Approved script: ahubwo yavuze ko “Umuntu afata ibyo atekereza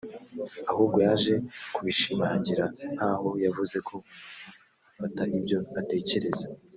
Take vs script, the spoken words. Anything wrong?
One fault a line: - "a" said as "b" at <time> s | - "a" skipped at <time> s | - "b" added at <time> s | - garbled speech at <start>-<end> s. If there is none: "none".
- "yaje kubishimangira nk'aho" added at 1.1 s